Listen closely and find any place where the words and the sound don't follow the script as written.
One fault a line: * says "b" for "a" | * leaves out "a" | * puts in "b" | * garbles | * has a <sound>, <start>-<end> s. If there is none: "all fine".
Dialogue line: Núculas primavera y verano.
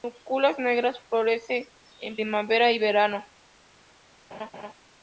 * puts in "negras Florece en"
* has a laugh, 4.3-4.7 s